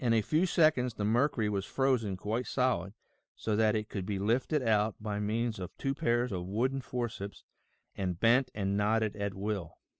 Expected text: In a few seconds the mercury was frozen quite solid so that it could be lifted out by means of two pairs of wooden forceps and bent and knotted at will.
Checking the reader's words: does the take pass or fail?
pass